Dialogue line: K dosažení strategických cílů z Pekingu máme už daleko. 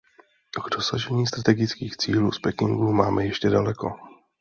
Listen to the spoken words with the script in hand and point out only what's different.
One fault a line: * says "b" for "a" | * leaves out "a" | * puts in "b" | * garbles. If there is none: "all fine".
* says "ještě" for "už"